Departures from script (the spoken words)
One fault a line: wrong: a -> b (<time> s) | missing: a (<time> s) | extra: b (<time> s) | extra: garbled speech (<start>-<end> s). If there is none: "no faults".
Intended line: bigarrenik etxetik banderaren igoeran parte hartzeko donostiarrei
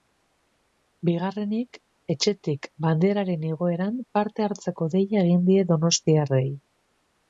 extra: deia egin die (5.0 s)